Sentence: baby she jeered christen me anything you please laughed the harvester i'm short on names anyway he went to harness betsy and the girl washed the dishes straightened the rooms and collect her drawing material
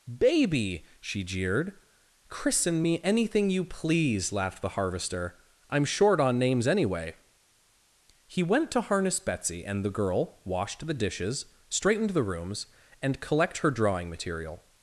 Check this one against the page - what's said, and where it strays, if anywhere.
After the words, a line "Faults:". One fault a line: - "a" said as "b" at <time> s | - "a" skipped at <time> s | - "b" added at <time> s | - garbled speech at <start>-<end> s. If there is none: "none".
baby she jeered christen me anything you please laughed the harvester i'm short on names anyway he went to harness betsy and the girl washed the dishes straightened the rooms and collect her drawing material
Faults:
none